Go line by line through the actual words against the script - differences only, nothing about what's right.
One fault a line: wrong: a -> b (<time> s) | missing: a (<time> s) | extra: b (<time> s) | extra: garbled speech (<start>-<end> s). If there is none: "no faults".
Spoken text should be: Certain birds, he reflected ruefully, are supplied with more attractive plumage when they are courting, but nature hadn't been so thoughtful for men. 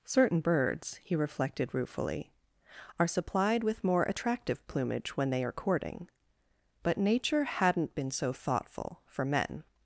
no faults